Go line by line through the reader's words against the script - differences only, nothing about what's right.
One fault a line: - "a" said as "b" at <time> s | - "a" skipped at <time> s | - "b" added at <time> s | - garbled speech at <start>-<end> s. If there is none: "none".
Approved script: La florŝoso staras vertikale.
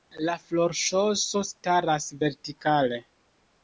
none